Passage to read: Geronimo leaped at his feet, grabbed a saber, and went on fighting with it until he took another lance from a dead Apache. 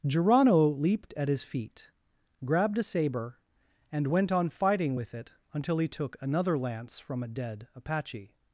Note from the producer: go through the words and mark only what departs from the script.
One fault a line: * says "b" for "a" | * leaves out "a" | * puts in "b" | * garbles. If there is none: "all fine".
all fine